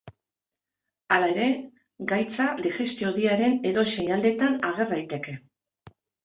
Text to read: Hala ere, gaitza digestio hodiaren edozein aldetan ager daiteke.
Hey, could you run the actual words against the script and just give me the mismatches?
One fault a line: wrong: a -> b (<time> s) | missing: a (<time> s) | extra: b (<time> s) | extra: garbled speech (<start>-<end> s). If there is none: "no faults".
no faults